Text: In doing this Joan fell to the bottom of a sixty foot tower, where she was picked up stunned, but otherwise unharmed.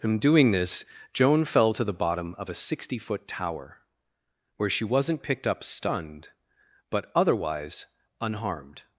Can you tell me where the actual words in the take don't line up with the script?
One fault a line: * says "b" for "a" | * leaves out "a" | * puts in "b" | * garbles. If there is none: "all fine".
* says "wasn't" for "was"